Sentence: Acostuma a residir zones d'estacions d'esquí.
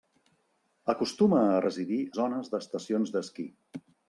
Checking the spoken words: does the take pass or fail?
pass